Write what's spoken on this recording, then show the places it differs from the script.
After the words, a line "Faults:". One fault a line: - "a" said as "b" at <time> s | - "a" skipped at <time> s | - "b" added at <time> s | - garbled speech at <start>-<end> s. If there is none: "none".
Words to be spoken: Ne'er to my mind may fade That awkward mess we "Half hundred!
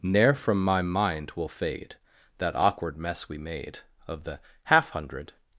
Ne'er from my mind will fade That awkward mess we made, Of the "Half hundred!
Faults:
- "to" said as "from" at 0.3 s
- "may" said as "will" at 1.4 s
- "made Of the" added at 3.4 s